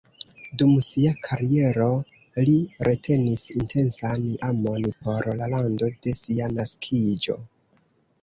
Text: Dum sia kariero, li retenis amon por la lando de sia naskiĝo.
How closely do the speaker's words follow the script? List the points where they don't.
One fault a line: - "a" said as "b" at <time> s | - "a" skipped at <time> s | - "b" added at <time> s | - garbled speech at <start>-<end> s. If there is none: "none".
- "intensan" added at 3.6 s